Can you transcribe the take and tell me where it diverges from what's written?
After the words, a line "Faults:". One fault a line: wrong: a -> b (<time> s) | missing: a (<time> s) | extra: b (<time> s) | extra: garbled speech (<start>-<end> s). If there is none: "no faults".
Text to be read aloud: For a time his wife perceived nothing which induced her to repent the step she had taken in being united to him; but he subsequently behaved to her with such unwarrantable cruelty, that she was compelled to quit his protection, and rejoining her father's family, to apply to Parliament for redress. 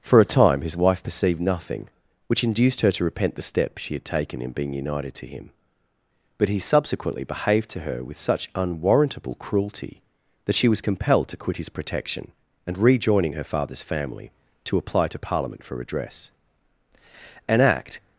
For a time his wife perceived nothing which induced her to repent the step she had taken in being united to him; but he subsequently behaved to her with such unwarrantable cruelty, that she was compelled to quit his protection, and rejoining her father's family, to apply to Parliament for redress. An act
Faults:
extra: An act (17.5 s)